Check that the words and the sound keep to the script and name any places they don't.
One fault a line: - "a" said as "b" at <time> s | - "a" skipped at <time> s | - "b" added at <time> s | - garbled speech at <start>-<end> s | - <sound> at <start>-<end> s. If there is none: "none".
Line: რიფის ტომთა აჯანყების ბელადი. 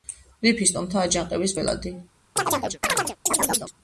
- chirp at 2.4-3.7 s